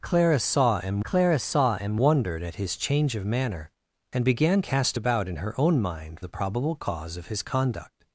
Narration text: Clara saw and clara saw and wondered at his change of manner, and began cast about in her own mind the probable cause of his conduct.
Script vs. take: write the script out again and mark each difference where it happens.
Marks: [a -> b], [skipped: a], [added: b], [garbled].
Clara saw and clara saw and wondered at his change of manner, and began cast about in her own mind the probable cause of his conduct.